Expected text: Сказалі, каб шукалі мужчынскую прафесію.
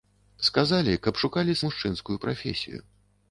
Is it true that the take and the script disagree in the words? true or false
false